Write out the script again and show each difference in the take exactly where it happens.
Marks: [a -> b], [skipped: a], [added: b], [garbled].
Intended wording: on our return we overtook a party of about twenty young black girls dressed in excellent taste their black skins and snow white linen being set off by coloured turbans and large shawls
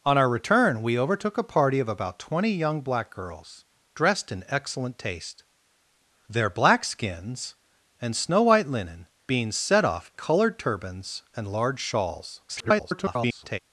on our return we overtook a party of about twenty young black girls dressed in excellent taste their black skins and snow white linen being set off [skipped: by] coloured turbans and large shawls [garbled]